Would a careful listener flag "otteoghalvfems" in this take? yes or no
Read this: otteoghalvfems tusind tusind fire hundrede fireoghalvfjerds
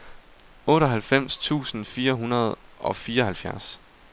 no